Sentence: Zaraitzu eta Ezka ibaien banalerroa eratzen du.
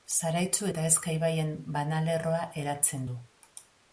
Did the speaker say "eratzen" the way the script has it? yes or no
yes